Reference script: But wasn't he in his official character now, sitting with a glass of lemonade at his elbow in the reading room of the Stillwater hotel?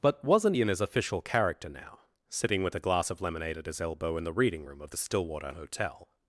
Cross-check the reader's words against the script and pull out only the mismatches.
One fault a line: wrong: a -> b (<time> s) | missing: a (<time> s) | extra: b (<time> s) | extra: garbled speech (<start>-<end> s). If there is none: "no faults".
no faults